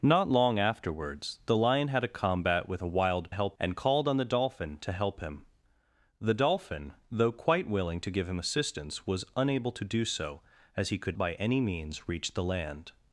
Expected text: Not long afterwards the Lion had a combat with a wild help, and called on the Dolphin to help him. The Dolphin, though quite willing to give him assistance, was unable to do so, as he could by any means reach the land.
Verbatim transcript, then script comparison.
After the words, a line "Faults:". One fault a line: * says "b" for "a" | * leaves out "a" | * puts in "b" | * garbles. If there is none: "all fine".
Not long afterwards the Lion had a combat with a wild help, and called on the Dolphin to help him. The Dolphin, though quite willing to give him assistance, was unable to do so, as he could by any means reach the land.
Faults:
all fine